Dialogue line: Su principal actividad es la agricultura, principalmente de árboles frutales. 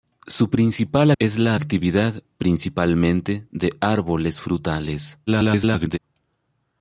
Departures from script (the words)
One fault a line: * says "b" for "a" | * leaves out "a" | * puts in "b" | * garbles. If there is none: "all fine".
* leaves out "actividad"
* says "actividad" for "agricultura"
* garbles